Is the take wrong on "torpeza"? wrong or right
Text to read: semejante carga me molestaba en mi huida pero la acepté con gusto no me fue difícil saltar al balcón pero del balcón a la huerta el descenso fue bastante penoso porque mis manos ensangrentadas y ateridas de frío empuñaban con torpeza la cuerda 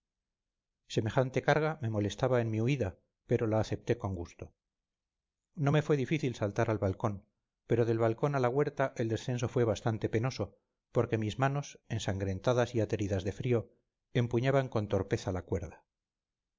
right